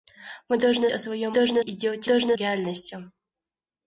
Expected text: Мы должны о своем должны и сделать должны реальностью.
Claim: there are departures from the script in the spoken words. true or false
false